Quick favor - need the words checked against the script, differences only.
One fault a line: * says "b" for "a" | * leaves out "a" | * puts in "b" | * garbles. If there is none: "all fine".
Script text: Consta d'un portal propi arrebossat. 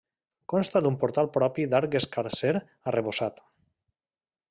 * puts in "d'arc escarser"